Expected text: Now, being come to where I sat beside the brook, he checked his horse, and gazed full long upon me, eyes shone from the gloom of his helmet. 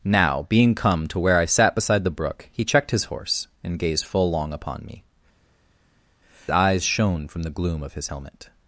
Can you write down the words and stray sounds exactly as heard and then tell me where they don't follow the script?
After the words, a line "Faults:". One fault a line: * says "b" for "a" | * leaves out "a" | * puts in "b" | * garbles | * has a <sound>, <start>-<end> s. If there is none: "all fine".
Now, being come to where I sat beside the brook, he checked his horse, and gazed full long upon me, eyes shone from the gloom of his helmet.
Faults:
all fine